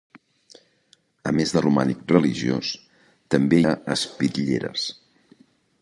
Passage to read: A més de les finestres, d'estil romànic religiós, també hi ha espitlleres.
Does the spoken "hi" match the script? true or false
false